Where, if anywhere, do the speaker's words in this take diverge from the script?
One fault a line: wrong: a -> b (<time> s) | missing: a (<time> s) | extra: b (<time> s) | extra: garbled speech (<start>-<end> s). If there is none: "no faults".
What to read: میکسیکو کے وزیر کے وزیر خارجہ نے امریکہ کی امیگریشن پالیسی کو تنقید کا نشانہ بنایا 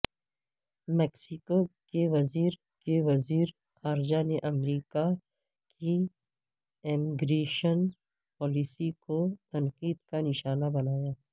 no faults